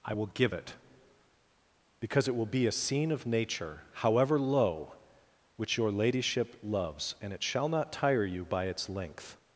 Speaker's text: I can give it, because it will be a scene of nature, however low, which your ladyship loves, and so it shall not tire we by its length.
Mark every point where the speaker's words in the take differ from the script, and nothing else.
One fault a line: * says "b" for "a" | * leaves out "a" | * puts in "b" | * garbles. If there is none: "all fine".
* says "will" for "can"
* leaves out "so"
* says "you" for "we"